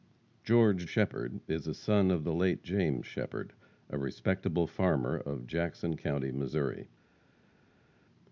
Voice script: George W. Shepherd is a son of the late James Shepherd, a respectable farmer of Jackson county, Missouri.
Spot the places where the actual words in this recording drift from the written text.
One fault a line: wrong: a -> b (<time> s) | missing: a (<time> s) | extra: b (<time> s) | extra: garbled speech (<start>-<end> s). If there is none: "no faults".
missing: W (0.9 s)